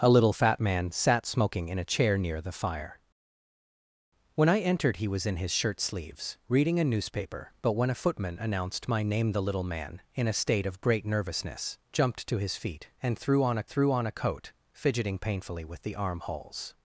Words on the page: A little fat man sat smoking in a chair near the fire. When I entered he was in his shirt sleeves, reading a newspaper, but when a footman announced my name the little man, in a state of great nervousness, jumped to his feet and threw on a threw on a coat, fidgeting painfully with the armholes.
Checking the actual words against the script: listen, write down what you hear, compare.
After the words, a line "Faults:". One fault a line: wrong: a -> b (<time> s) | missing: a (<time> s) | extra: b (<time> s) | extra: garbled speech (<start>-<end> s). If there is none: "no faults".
A little fat man sat smoking in a chair near the fire. When I entered he was in his shirt sleeves, reading a newspaper, but when a footman announced my name the little man, in a state of great nervousness, jumped to his feet and threw on a threw on a coat, fidgeting painfully with the armholes.
Faults:
no faults